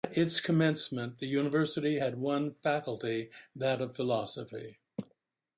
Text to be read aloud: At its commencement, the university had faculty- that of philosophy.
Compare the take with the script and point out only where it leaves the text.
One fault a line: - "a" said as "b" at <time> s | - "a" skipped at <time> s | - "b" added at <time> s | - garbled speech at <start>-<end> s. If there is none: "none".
- "one" added at 2.2 s